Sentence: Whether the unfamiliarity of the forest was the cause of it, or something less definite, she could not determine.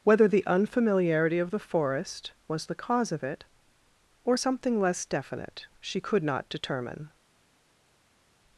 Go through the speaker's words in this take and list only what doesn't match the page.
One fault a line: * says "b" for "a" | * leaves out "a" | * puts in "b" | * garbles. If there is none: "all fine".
all fine